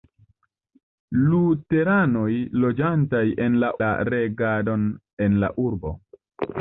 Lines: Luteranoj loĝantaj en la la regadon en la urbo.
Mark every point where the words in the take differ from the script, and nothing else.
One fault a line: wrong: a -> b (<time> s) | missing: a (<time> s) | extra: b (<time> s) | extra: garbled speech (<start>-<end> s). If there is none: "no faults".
no faults